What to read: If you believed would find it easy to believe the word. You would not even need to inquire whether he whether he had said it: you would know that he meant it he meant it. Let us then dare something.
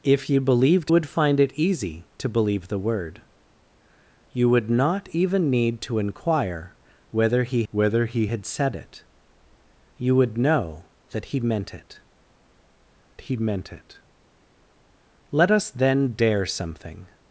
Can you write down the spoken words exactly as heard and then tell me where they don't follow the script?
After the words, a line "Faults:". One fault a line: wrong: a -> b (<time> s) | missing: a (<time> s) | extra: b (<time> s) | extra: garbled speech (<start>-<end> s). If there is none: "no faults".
If you believed would find it easy to believe the word. You would not even need to inquire whether he whether he had said it: you would know that he meant it he meant it. Let us then dare something.
Faults:
no faults